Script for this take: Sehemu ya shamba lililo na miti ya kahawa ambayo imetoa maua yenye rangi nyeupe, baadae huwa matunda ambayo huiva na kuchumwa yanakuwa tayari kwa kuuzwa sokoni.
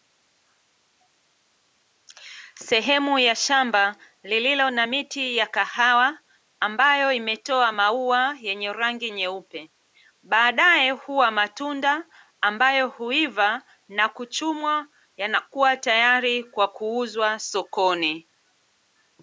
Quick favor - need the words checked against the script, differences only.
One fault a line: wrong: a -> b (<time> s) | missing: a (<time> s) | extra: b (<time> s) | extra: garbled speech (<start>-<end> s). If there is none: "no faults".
no faults